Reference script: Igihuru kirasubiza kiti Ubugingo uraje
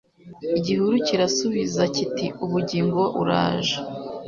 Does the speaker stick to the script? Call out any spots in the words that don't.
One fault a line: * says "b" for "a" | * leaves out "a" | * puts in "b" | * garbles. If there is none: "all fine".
all fine